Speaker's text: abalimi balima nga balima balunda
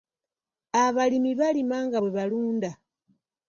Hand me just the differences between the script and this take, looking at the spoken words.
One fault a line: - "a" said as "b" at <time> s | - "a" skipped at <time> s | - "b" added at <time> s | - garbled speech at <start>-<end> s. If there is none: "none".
- "balima" said as "bwe" at 2.0 s